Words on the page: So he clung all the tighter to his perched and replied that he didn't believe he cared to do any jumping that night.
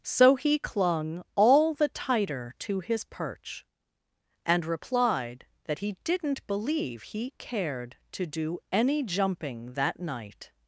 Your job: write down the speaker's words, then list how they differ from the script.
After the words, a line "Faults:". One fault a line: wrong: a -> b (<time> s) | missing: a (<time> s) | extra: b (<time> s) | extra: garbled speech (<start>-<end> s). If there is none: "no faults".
So he clung all the tighter to his perch and replied that he didn't believe he cared to do any jumping that night.
Faults:
wrong: perched -> perch (3.0 s)